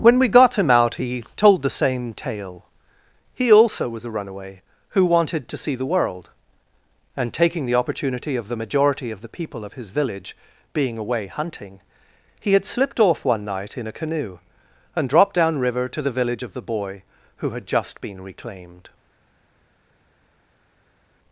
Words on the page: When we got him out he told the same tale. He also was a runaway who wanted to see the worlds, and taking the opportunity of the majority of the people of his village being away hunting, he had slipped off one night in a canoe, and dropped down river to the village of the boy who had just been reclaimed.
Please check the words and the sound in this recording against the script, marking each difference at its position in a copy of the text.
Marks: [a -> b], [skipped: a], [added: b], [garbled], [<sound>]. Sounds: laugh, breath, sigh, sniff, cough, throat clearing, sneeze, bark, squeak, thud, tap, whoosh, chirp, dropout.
When we got him out he told the same tale. He also was a runaway who wanted to see the [worlds, -> world] and taking the opportunity of the majority of the people of his village being away hunting, he had slipped off one night in a canoe, and dropped down river to the village of the boy who had just been reclaimed.